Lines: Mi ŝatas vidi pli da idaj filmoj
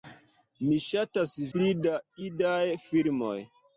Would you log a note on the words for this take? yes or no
yes